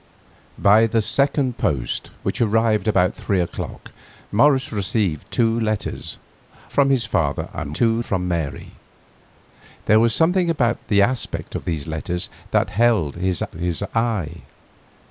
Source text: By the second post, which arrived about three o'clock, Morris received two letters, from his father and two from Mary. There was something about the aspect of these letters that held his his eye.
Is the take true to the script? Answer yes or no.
yes